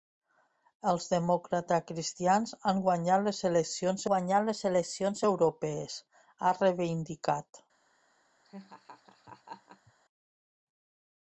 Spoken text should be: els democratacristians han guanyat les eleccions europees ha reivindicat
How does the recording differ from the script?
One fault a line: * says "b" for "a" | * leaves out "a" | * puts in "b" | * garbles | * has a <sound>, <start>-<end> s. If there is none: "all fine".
* puts in "guanyat les eleccions"
* has a laugh, 8.4-9.9 s